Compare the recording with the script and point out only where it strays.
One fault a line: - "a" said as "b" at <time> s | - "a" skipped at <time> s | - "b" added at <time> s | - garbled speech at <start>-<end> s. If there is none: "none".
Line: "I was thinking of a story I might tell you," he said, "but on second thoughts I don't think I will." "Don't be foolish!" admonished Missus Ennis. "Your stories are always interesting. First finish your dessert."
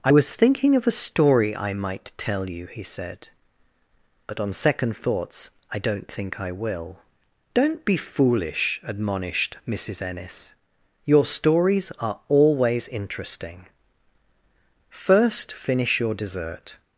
none